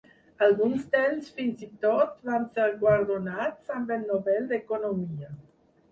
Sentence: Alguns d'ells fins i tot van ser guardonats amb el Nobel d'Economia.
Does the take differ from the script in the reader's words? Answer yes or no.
no